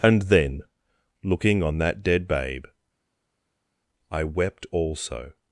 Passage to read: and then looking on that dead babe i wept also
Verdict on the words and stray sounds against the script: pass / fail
pass